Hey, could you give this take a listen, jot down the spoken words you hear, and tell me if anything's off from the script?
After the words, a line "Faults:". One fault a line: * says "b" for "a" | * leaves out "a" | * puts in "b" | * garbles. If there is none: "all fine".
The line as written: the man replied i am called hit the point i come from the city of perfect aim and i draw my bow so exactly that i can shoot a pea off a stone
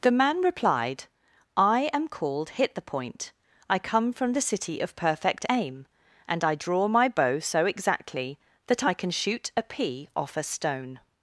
the man replied i am called hit the point i come from the city of perfect aim and i draw my bow so exactly that i can shoot a pea off a stone
Faults:
all fine